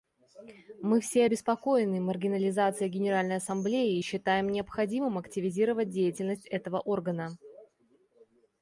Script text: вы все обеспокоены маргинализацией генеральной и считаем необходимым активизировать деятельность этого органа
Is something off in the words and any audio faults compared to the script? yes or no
yes